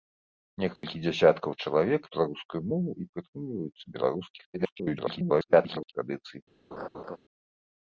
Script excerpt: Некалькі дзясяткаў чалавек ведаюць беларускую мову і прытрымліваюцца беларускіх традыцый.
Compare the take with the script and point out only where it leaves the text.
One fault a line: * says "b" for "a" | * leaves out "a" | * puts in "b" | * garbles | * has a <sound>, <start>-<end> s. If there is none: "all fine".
* has a dropout, 0.8-0.8 s
* leaves out "ведаюць"
* garbles
* has a laugh, 6.7-7.2 s